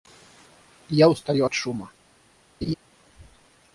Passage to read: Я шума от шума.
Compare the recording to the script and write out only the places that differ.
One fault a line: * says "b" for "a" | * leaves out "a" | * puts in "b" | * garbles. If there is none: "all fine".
* says "устаю" for "шума"